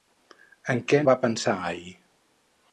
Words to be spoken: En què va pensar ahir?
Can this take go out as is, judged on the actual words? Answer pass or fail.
pass